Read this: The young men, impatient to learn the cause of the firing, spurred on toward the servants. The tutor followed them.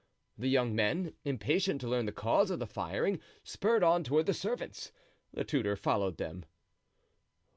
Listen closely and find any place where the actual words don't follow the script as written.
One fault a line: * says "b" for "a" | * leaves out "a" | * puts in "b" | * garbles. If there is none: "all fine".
all fine